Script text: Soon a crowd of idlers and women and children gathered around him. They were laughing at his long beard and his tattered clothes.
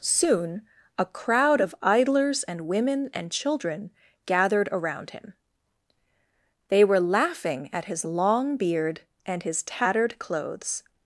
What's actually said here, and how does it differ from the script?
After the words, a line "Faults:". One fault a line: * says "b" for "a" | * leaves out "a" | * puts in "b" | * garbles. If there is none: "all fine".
Soon a crowd of idlers and women and children gathered around him. They were laughing at his long beard and his tattered clothes.
Faults:
all fine